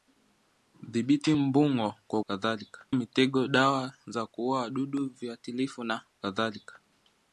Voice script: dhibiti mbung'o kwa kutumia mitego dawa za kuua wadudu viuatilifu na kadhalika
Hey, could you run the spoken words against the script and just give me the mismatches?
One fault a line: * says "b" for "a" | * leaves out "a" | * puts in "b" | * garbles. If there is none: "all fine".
* says "kadhalika" for "kutumia"